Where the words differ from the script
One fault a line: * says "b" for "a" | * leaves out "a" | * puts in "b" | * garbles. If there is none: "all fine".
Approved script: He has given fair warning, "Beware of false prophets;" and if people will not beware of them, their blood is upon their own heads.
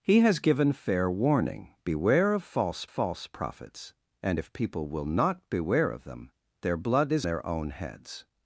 * puts in "false"
* leaves out "upon"